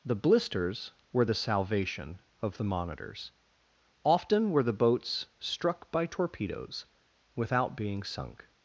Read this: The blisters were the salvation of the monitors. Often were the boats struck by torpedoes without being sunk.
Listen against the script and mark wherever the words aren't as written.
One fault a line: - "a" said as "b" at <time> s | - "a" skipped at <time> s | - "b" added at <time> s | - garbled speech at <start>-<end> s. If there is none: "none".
none